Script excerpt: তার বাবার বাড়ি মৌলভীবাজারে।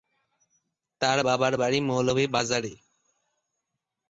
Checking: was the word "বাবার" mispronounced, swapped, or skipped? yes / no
no